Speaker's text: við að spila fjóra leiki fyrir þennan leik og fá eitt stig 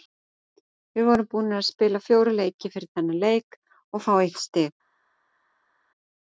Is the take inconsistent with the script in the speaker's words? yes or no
yes